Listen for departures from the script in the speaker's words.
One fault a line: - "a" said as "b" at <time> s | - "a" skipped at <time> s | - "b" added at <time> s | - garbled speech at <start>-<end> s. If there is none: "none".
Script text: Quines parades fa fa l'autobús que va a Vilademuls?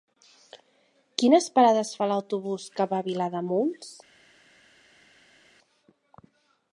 - "fa" skipped at 2.1 s